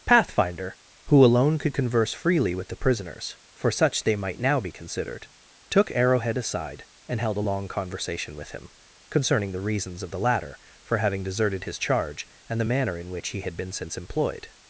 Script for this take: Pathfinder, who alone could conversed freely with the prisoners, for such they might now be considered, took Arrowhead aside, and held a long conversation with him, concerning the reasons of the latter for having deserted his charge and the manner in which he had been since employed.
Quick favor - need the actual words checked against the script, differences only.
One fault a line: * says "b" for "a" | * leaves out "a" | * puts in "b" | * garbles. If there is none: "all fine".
* says "converse" for "conversed"